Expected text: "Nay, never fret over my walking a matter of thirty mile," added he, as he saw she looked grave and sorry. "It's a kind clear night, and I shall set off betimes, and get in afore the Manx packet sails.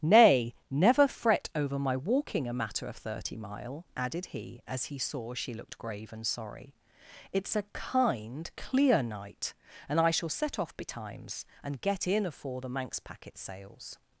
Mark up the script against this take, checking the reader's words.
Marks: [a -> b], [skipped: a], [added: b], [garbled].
"Nay, never fret over my walking a matter of thirty mile," added he, as he saw she looked grave and sorry. "It's a kind clear night, and I shall set off betimes, and get in afore the Manx packet sails.